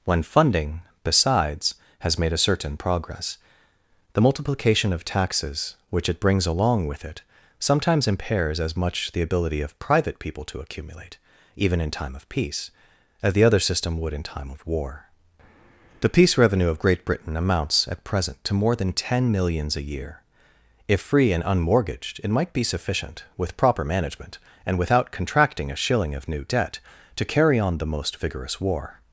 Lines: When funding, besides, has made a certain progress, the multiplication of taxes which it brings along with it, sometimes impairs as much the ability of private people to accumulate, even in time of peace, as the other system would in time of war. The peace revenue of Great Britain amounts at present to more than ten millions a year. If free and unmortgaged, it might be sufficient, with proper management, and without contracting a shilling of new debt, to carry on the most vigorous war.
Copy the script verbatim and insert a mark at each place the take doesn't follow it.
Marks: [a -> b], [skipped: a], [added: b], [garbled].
When funding, besides, has made a certain progress, the multiplication of taxes which it brings along with it, sometimes impairs as much the ability of private people to accumulate, even in time of peace, as the other system would in time of war. The peace revenue of Great Britain amounts at present to more than ten millions a year. If free and unmortgaged, it might be sufficient, with proper management, and without contracting a shilling of new debt, to carry on the most vigorous war.